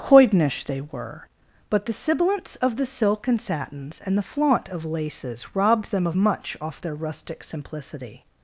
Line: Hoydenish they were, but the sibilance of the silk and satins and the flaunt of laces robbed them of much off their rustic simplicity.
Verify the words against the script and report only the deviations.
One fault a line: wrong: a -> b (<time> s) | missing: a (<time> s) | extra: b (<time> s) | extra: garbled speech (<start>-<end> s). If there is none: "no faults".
no faults